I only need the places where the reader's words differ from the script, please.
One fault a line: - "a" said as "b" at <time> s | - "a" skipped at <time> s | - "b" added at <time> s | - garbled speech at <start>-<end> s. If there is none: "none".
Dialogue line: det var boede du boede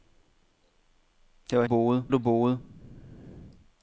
none